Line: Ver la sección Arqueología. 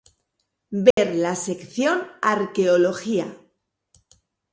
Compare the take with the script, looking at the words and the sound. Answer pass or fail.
fail